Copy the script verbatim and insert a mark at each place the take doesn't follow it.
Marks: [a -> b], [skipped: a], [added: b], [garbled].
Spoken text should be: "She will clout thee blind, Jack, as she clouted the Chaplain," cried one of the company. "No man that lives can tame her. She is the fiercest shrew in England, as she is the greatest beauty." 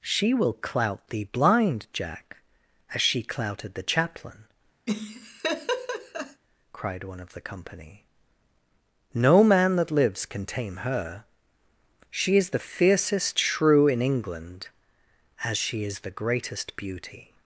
"She will clout thee blind, Jack, as she clouted the Chaplain," cried one of the company. "No man that lives can tame her. She is the fiercest shrew in England, as she is the greatest beauty."